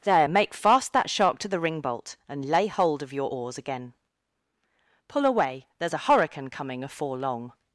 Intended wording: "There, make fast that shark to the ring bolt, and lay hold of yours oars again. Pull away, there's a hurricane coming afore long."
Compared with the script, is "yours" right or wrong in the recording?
wrong